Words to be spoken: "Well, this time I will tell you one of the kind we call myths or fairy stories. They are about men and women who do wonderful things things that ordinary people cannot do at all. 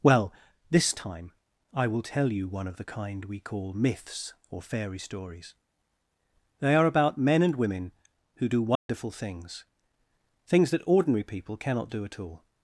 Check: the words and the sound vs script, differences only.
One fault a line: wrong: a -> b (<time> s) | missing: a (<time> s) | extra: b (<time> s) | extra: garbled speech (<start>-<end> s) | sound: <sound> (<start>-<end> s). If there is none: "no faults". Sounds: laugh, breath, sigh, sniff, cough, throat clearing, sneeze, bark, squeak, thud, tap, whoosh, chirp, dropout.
sound: dropout (8.8-8.9 s)